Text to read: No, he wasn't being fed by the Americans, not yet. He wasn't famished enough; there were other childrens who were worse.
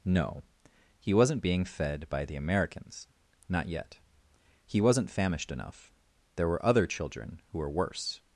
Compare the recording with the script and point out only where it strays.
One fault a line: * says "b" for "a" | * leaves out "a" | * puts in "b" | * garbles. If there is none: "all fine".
* says "children" for "childrens"